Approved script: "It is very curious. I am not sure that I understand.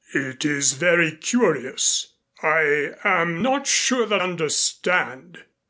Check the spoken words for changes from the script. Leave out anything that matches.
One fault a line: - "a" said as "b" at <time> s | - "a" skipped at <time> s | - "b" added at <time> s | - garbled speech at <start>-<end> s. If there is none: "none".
- "I" skipped at 4.2 s